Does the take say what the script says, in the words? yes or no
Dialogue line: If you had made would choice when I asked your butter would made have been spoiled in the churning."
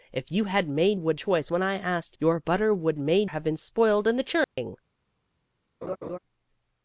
yes